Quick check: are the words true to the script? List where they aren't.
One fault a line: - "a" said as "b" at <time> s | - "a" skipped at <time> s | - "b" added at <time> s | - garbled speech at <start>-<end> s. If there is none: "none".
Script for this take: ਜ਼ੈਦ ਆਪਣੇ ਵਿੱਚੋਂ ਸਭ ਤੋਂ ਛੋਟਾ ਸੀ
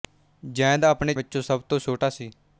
none